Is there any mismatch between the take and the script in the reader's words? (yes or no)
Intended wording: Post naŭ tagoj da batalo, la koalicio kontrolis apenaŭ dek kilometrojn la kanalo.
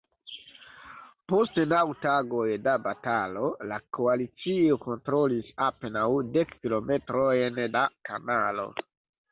no